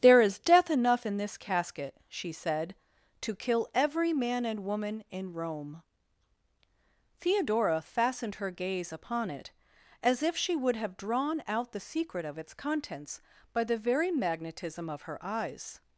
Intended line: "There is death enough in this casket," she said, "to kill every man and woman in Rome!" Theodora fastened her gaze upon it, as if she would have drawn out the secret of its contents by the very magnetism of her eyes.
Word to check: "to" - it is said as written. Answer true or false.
true